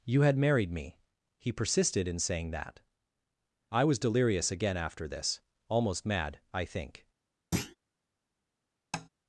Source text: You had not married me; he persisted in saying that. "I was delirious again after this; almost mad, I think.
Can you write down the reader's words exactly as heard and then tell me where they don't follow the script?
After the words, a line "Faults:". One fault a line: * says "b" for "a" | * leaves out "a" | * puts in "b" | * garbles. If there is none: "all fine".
You had married me; he persisted in saying that. "I was delirious again after this; almost mad, I think.
Faults:
* leaves out "not"